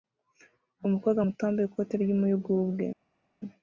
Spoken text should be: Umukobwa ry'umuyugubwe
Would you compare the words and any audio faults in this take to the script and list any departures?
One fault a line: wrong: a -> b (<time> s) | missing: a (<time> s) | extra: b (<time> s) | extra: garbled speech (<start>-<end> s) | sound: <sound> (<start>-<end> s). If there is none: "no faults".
extra: muto wambaye ikote (1.3 s)